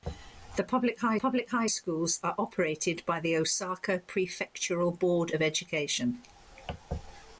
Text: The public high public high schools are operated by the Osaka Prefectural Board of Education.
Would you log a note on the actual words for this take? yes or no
no